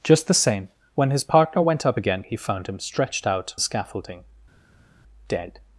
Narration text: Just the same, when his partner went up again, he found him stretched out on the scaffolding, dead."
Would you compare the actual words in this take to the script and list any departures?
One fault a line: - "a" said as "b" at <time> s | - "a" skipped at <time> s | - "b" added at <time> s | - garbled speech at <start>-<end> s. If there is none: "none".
- "on" skipped at 3.6 s